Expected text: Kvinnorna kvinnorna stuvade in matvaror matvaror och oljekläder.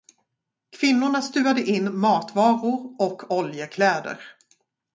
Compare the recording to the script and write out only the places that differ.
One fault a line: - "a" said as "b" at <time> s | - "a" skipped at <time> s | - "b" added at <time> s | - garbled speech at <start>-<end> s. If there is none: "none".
- "kvinnorna" skipped at 1.2 s
- "matvaror" skipped at 3.0 s